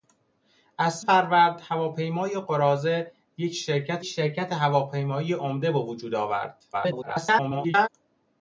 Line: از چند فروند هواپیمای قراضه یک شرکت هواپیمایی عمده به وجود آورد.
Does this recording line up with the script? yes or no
no